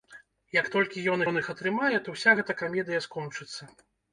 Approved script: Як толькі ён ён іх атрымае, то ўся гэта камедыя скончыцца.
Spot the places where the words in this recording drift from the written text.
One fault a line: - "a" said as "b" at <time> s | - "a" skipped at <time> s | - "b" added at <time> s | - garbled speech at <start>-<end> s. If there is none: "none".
none